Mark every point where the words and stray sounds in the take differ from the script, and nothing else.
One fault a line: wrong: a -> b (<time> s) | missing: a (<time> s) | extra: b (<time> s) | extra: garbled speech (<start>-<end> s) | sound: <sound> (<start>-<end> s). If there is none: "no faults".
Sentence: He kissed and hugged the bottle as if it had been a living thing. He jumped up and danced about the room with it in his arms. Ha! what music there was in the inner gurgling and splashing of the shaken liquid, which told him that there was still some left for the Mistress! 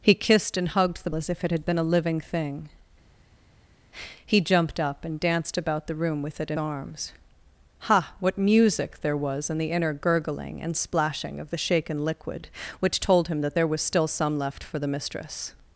missing: bottle (1.1 s)
missing: his (6.6 s)